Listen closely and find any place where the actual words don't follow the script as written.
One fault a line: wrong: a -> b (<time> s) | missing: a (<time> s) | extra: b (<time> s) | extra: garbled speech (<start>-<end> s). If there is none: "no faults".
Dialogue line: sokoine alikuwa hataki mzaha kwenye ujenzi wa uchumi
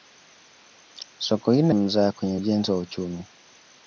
missing: alikuwa hataki (1.8 s)